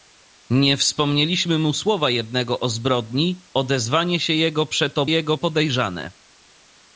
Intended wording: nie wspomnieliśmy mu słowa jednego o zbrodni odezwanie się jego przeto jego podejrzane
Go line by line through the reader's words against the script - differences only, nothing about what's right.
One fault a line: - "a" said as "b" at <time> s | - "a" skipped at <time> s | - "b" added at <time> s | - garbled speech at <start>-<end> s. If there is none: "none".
none